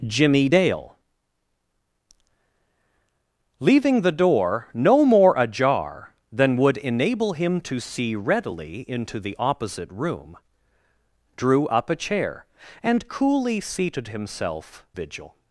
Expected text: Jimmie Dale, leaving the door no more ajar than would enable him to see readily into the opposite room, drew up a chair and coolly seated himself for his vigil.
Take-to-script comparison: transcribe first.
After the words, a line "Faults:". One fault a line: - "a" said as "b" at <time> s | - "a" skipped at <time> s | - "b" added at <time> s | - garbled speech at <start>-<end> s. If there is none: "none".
Jimmie Dale, leaving the door no more ajar than would enable him to see readily into the opposite room, drew up a chair and coolly seated himself vigil.
Faults:
- "for his" skipped at 14.8 s